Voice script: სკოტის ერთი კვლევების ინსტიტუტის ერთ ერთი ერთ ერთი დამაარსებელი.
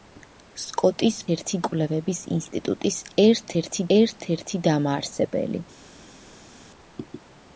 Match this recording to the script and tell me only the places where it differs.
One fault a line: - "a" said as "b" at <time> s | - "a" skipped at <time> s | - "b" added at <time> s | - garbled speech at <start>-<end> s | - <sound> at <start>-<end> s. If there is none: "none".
none